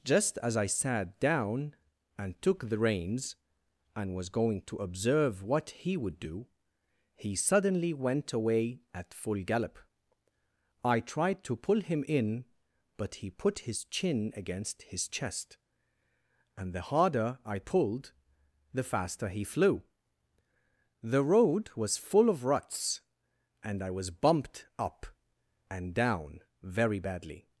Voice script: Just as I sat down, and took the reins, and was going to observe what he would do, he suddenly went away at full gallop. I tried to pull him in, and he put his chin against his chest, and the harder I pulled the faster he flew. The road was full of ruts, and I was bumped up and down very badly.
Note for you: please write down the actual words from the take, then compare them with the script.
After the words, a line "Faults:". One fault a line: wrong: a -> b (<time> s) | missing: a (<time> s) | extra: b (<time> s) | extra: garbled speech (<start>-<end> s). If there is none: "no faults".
Just as I sat down, and took the reins, and was going to observe what he would do, he suddenly went away at full gallop. I tried to pull him in, but he put his chin against his chest, and the harder I pulled the faster he flew. The road was full of ruts, and I was bumped up and down very badly.
Faults:
wrong: and -> but (13.0 s)